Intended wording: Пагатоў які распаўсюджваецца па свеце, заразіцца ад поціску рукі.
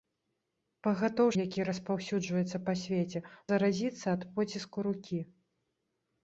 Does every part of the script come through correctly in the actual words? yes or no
yes